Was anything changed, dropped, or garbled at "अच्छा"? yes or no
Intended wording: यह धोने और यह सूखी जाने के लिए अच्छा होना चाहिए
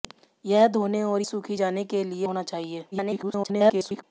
yes